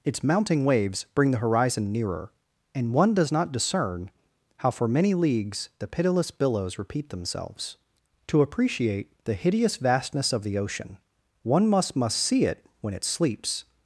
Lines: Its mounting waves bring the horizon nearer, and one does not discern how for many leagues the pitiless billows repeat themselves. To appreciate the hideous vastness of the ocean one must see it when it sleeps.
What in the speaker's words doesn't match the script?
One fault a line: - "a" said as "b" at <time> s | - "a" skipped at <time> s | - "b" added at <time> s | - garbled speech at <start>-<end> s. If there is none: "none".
- "must" added at 12.0 s